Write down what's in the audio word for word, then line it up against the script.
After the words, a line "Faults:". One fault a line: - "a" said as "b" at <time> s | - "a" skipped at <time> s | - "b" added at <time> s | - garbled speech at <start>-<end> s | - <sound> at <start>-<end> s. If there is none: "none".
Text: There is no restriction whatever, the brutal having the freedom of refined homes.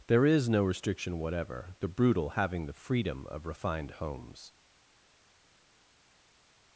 There is no restriction whatever, the brutal having the freedom of refined homes.
Faults:
none